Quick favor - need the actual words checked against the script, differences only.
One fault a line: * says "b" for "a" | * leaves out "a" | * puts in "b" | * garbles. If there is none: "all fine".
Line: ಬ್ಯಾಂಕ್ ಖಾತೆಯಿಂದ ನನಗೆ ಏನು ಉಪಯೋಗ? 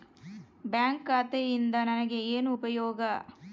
all fine